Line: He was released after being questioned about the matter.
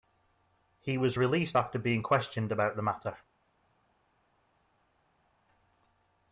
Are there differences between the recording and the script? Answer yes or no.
no